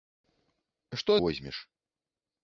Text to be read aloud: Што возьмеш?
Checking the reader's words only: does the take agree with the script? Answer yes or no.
yes